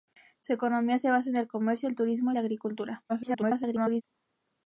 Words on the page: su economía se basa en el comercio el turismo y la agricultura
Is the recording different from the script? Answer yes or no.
yes